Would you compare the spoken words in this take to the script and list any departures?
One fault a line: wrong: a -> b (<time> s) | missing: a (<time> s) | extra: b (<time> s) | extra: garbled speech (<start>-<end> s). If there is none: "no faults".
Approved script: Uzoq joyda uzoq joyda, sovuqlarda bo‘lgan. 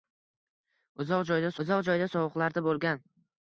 no faults